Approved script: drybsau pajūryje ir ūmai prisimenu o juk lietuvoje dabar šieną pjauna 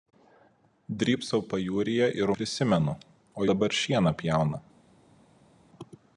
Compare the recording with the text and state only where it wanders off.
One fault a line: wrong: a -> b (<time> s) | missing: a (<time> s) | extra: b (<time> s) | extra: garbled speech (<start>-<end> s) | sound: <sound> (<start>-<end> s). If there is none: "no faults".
missing: ūmai (2.3 s)
missing: juk lietuvoje (3.5 s)